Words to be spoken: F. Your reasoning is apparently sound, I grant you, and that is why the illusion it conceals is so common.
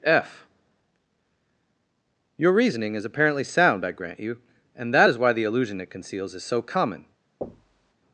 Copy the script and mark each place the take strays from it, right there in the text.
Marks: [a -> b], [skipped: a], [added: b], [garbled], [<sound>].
F. Your reasoning is apparently sound, I grant you, and that is why the illusion it conceals is so common. [thud]